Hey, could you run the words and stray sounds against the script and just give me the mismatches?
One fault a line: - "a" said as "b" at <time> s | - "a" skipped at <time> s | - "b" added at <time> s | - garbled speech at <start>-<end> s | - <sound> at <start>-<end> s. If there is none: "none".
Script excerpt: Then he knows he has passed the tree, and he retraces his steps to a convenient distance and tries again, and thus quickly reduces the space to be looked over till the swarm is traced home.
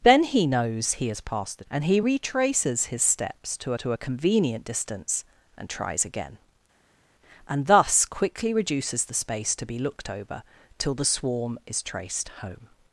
- "tree" skipped at 1.6 s
- "to" added at 3.8 s